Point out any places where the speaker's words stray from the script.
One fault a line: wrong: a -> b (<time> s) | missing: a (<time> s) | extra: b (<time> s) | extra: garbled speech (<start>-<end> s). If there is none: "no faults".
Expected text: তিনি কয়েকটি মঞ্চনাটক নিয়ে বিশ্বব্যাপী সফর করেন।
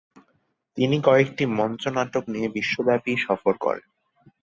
no faults